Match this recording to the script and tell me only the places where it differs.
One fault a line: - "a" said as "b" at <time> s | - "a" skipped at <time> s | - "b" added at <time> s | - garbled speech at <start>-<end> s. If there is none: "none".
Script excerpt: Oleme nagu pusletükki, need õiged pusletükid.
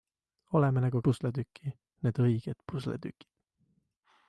none